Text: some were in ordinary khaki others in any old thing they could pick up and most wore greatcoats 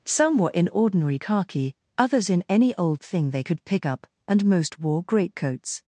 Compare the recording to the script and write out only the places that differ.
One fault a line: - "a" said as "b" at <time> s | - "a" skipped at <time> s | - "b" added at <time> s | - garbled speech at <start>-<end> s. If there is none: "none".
none